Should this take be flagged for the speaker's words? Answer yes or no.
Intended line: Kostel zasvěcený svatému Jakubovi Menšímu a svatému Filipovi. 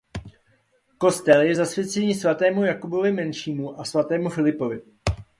yes